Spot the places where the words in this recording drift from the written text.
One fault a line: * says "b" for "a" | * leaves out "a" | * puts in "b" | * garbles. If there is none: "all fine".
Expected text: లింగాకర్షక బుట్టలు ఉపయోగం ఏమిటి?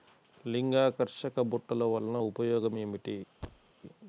* puts in "వలన"